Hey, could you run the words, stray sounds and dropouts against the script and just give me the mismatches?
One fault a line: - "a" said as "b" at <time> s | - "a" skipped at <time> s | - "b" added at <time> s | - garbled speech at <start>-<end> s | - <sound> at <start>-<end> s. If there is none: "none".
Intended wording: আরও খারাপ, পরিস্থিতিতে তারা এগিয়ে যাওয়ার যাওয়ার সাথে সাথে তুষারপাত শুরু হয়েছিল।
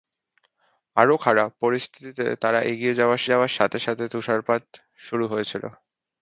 none